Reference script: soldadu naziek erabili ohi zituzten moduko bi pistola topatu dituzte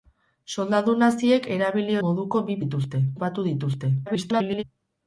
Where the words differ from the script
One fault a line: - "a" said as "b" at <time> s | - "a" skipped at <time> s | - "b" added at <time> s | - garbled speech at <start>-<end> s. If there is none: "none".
- "ohi zituzten" skipped at 2.0 s
- "pistola" said as "dituzte" at 2.6 s
- garbled speech at 4.1-4.6 s